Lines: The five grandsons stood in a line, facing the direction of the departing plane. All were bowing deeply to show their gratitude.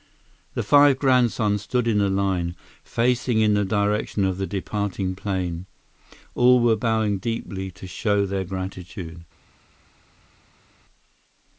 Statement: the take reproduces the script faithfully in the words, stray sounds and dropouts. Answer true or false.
false